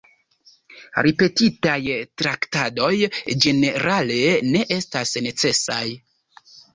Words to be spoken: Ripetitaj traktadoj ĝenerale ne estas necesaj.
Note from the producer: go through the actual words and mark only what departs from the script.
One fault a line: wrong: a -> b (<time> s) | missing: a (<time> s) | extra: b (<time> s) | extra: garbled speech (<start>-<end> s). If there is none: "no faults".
no faults